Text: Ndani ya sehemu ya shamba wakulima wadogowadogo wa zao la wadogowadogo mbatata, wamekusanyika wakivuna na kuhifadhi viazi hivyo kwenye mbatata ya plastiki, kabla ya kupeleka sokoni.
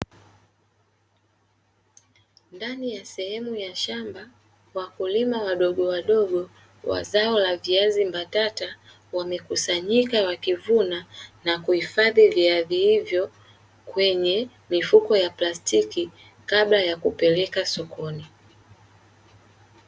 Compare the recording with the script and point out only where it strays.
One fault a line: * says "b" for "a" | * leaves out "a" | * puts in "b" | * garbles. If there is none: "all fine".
* says "viazi" for "wadogowadogo"
* says "mifuko" for "mbatata"